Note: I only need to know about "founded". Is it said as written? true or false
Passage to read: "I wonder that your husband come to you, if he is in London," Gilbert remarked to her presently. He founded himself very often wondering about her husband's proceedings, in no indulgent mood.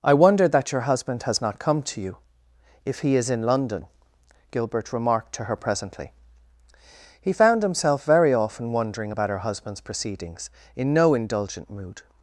false